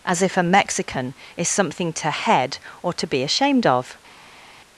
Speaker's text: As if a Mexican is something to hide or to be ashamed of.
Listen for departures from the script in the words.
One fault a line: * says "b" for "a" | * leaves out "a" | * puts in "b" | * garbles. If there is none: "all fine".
* says "head" for "hide"